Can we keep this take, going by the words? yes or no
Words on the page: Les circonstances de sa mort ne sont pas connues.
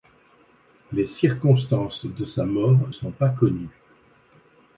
no